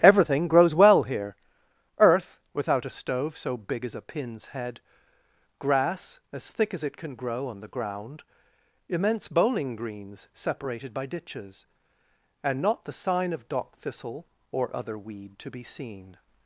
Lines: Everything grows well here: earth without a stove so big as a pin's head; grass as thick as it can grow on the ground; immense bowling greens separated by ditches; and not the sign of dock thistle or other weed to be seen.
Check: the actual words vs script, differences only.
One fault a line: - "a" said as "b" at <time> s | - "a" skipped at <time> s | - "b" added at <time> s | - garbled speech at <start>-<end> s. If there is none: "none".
none